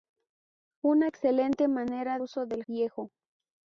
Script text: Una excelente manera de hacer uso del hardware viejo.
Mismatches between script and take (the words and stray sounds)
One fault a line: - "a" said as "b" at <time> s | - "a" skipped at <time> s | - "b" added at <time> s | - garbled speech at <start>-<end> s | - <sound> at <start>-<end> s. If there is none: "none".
- "de hacer" skipped at 2.2 s
- "hardware" skipped at 2.6 s